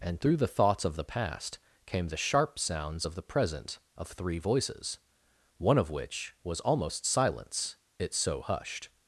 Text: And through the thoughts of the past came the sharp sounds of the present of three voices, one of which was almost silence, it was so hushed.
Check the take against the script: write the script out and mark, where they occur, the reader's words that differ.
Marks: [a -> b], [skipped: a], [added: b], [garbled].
And through the thoughts of the past came the sharp sounds of the present of three voices, one of which was almost silence, it [skipped: was] so hushed.